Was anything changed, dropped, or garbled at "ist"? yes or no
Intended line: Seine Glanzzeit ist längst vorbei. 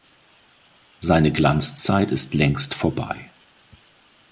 no